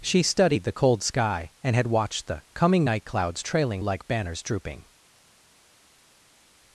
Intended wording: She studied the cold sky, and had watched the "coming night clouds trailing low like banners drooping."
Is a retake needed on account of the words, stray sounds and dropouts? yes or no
yes